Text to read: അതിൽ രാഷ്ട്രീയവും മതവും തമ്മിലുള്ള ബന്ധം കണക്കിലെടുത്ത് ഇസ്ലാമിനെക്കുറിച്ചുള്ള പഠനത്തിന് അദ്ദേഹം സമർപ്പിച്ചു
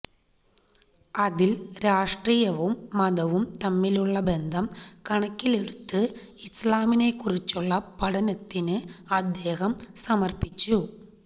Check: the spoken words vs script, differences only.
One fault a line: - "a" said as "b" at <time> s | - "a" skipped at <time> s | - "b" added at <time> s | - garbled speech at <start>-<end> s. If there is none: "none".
none